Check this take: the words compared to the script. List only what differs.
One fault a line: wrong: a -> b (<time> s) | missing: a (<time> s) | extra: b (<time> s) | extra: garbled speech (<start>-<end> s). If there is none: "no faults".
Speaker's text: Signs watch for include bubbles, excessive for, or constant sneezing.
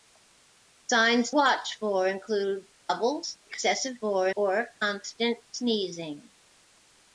no faults